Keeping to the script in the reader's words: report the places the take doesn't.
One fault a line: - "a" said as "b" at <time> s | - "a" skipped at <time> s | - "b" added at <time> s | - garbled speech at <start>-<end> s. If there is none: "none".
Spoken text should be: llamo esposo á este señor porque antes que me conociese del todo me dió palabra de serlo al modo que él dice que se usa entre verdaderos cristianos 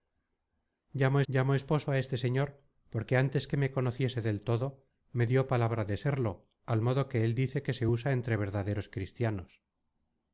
- "llamo" added at 1.3 s